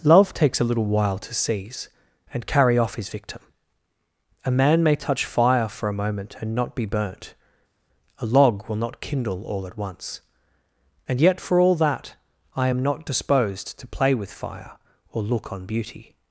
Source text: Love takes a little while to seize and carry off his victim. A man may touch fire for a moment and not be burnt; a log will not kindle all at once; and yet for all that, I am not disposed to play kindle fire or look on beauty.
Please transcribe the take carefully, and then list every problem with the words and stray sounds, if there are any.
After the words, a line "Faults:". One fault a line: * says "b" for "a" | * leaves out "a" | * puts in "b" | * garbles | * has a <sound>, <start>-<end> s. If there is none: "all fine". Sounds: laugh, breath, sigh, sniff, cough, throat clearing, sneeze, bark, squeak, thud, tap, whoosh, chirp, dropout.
Love takes a little while to seize and carry off his victim. A man may touch fire for a moment and not be burnt; a log will not kindle all at once; and yet for all that, I am not disposed to play with fire or look on beauty.
Faults:
* says "with" for "kindle"